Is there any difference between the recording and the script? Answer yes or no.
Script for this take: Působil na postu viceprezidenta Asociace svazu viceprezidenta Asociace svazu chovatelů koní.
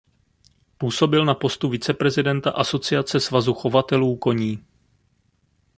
yes